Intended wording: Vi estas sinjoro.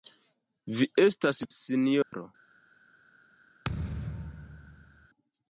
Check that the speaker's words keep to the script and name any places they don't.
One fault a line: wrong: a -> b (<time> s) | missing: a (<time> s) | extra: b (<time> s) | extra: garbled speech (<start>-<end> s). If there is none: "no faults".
no faults